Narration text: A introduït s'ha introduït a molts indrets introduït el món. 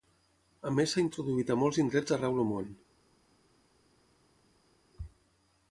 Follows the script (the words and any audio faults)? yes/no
no